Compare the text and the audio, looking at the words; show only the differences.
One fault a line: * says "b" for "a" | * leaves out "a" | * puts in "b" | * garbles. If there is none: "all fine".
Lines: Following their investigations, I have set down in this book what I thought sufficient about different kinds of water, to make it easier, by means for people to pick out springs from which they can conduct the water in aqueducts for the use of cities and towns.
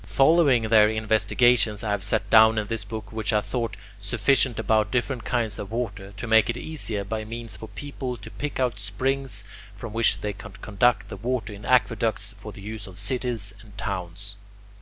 all fine